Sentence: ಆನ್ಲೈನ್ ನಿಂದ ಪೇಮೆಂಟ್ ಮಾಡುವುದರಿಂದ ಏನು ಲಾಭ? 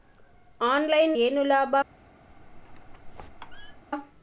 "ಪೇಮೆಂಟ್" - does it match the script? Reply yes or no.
no